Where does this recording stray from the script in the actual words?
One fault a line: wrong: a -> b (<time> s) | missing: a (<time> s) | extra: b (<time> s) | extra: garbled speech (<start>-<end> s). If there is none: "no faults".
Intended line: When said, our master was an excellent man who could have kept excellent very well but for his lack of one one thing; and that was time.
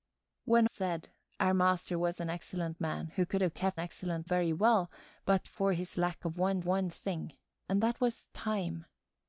no faults